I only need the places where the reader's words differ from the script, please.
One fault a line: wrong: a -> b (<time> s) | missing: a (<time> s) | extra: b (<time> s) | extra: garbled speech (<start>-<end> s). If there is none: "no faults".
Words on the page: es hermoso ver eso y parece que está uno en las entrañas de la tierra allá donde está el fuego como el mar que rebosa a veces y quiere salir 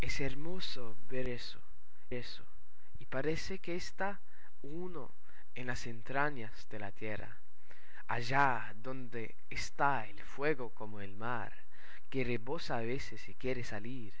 extra: eso (2.1 s)